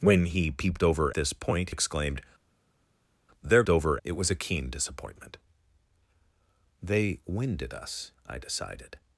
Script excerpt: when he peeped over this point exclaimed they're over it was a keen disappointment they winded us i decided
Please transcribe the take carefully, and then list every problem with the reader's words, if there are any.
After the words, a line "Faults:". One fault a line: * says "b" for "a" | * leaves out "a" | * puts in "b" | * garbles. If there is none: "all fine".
when he peeped over this point exclaimed they're over it was a keen disappointment they winded us i decided
Faults:
all fine